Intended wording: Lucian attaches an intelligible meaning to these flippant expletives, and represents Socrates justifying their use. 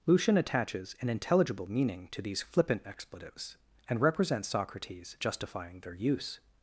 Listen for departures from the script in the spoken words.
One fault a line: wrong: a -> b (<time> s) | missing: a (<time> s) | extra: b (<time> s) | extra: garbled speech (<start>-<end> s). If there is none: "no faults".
no faults